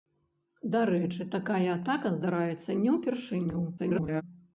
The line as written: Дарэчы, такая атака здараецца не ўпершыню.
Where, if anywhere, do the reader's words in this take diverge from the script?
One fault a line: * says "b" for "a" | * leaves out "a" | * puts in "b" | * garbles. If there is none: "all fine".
* garbles